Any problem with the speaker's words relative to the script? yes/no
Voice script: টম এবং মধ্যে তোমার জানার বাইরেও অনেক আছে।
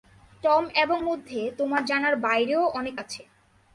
no